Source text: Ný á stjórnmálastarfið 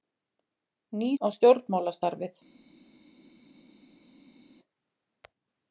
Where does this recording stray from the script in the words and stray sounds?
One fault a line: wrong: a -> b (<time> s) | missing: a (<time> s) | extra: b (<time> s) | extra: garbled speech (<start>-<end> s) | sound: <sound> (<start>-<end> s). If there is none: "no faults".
no faults